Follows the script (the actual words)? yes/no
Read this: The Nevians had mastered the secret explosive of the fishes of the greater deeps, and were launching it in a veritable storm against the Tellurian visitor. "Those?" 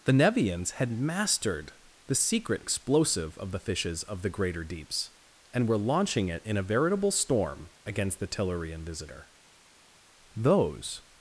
yes